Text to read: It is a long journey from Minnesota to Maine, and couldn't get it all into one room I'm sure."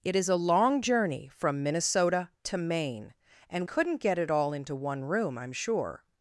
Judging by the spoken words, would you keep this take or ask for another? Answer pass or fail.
pass